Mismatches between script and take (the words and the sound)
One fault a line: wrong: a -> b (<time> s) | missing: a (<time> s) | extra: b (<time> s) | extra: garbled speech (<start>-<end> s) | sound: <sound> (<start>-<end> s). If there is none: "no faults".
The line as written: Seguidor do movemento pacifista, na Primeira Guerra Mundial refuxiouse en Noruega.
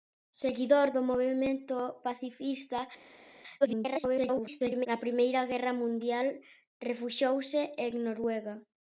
extra: garbled speech (3.6-4.9 s)